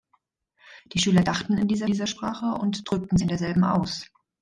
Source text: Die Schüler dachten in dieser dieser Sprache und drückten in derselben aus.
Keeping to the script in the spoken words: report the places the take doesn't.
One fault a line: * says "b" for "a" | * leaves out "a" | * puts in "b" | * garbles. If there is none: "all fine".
all fine